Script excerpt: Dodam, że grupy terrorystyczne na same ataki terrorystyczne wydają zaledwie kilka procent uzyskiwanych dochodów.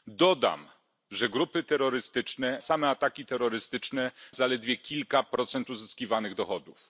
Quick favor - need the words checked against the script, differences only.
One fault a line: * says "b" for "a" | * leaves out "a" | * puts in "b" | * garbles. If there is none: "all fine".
* leaves out "na"
* leaves out "wydają"